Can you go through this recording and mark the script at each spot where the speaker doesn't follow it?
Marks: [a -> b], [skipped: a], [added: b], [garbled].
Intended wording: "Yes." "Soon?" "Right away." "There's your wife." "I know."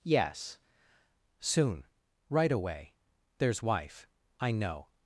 "Yes." "Soon?" "Right away." "There's [skipped: your] wife." "I know."